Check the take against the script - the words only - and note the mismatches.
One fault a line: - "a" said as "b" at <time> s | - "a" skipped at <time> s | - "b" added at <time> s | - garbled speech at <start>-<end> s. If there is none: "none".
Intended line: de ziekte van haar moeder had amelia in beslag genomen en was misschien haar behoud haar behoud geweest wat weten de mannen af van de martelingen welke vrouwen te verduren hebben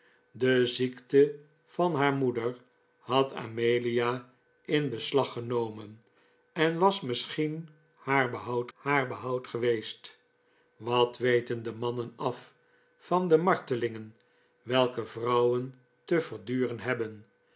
none